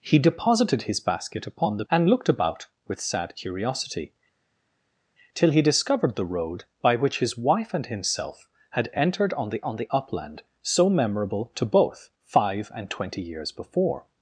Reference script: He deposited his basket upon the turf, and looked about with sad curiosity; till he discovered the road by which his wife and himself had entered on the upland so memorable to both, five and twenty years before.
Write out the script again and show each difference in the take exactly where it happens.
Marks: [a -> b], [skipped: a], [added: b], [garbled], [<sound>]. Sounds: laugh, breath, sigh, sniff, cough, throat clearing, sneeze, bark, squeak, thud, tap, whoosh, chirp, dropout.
He deposited his basket upon the [skipped: turf,] and looked about with sad curiosity; till he discovered the road by which his wife and himself had entered on the [added: on the] upland so memorable to both, five and twenty years before.